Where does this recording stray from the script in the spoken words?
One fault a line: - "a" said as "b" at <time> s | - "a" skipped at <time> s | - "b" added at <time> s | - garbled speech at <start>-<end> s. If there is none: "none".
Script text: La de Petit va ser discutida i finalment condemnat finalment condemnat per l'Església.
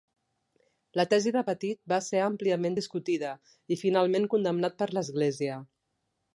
- "tesi" added at 1.1 s
- "àmpliament" added at 2.3 s
- "finalment condemnat" skipped at 4.8 s